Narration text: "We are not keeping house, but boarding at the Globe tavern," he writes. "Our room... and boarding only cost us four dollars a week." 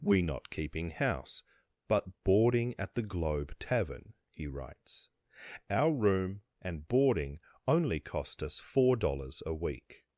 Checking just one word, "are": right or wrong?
wrong